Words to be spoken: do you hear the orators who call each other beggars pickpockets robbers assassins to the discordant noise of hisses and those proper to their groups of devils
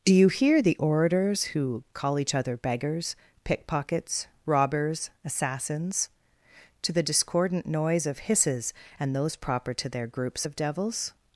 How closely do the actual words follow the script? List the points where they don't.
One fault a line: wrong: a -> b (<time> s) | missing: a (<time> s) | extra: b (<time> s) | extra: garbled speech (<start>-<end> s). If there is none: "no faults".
no faults